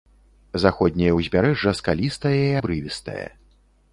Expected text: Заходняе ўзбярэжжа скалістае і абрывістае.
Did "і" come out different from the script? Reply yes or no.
no